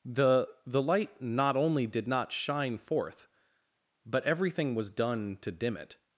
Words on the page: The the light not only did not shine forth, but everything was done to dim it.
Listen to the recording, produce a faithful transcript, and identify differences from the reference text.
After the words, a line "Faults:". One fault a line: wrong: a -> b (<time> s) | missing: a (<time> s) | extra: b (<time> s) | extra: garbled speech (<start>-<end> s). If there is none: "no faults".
The the light not only did not shine forth, but everything was done to dim it.
Faults:
no faults